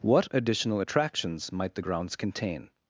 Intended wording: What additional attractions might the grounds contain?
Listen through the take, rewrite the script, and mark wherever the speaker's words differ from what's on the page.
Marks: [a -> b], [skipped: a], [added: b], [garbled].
What additional attractions might the grounds contain?